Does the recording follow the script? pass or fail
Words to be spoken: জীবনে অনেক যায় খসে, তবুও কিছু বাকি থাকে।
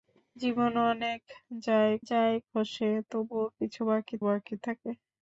fail